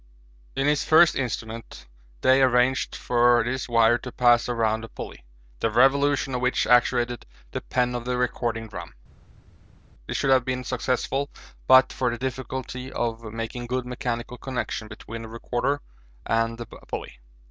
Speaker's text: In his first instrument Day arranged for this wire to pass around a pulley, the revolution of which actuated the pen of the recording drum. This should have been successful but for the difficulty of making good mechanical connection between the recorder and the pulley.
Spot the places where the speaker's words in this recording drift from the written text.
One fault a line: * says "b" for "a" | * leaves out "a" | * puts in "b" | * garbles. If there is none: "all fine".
all fine